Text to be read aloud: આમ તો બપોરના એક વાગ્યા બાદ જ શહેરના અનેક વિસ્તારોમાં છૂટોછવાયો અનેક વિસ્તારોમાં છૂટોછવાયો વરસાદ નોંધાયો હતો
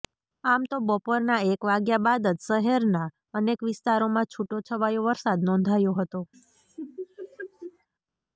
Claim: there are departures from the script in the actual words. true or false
true